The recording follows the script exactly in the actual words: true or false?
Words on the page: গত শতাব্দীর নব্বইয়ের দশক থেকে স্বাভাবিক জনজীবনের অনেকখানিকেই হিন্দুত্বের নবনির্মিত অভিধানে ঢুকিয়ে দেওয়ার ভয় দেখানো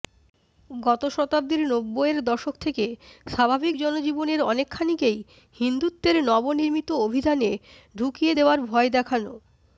true